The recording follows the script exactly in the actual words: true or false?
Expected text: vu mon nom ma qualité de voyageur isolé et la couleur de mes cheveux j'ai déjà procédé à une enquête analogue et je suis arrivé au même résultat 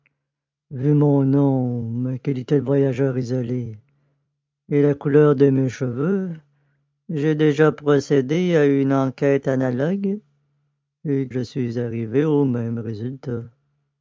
true